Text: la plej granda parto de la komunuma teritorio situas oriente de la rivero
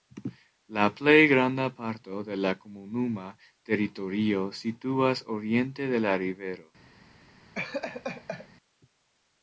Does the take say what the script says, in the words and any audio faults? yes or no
no